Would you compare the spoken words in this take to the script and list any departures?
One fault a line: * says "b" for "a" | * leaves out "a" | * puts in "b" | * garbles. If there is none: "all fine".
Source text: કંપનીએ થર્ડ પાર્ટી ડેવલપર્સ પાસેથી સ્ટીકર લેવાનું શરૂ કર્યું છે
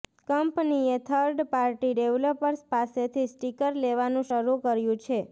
all fine